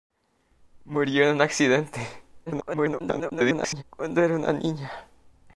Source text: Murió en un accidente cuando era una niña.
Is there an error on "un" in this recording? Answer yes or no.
no